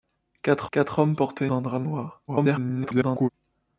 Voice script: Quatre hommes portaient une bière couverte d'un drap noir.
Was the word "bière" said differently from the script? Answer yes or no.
yes